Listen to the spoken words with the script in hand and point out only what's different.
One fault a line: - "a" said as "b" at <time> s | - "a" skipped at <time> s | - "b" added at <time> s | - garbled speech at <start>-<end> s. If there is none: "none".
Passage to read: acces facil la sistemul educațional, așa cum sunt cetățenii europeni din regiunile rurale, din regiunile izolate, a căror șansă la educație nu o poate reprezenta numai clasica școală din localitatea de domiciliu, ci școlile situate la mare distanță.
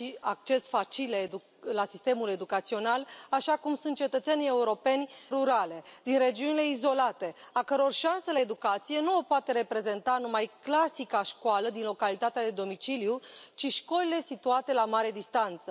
- "din regiunile" skipped at 5.1 s